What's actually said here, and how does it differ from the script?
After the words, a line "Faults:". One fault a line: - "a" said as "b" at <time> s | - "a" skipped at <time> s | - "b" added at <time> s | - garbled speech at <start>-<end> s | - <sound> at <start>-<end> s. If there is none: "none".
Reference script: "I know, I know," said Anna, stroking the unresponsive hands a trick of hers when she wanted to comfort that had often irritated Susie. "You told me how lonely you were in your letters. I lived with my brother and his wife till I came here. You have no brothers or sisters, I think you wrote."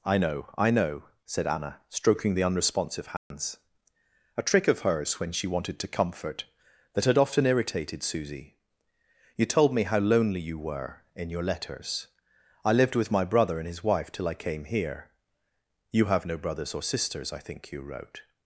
"I know, I know," said Anna, stroking the unresponsive hands a trick of hers when she wanted to comfort that had often irritated Susie. "You told me how lonely you were in your letters. I lived with my brother and his wife till I came here. You have no brothers or sisters, I think you wrote."
Faults:
- dropout at 3.2-3.3 s